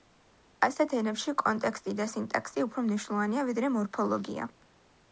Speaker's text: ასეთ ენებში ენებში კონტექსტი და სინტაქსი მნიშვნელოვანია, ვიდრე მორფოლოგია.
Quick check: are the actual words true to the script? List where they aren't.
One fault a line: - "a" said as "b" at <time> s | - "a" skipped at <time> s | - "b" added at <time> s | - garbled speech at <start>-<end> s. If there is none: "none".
- "ენებში" skipped at 1.4 s
- "უფრო" added at 2.7 s